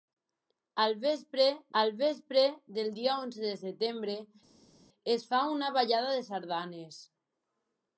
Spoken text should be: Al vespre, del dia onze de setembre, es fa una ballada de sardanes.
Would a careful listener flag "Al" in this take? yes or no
no